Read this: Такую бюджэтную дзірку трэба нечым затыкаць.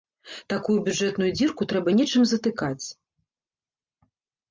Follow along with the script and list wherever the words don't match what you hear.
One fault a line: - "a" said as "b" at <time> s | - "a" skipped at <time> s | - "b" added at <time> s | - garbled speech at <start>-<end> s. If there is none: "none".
none